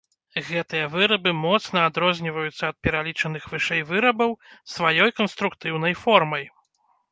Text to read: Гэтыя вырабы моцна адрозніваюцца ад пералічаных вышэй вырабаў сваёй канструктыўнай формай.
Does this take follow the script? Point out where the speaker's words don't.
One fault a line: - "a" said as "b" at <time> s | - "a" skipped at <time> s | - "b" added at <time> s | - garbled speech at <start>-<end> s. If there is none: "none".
none